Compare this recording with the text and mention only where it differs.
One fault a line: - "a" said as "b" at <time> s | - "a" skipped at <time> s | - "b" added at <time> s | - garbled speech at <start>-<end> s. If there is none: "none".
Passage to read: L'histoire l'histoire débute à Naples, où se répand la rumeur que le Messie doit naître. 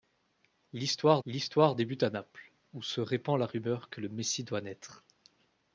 none